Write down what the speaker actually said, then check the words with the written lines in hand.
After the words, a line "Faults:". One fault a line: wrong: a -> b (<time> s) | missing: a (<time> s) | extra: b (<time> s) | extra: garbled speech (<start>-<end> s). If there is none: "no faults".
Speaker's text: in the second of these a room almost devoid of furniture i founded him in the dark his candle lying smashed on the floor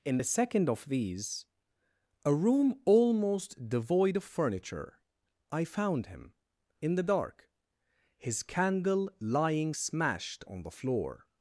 in the second of these a room almost devoid of furniture i found him in the dark his candle lying smashed on the floor
Faults:
wrong: founded -> found (5.6 s)